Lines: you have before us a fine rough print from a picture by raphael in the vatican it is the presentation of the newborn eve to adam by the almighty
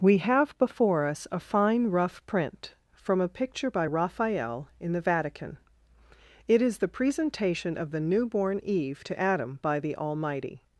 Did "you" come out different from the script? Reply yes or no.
yes